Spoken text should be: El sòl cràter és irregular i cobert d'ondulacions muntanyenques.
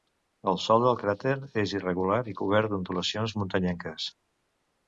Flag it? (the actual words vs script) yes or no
yes